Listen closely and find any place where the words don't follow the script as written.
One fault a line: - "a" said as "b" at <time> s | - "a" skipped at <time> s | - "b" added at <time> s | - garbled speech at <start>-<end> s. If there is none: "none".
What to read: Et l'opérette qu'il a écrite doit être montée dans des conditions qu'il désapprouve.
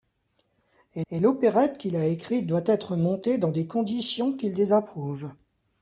- "et" added at 1.1 s